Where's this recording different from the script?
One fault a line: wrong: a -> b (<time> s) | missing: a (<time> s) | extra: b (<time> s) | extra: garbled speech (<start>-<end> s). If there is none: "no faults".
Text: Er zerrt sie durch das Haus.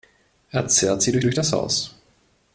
extra: durch (1.2 s)